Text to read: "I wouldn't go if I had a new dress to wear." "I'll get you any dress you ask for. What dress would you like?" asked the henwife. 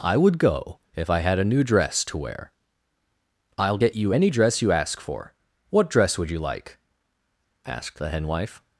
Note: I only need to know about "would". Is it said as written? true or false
true